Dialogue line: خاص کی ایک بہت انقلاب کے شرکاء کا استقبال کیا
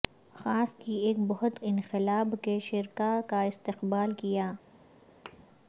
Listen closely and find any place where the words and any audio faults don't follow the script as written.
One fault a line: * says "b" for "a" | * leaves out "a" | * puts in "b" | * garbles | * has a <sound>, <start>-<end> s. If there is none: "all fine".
* has a thud, 5.3-5.4 s